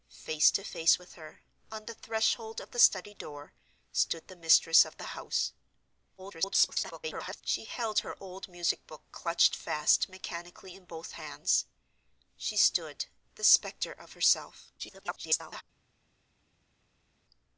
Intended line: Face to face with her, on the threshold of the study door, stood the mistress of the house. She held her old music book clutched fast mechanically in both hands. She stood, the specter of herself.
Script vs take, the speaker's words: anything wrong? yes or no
yes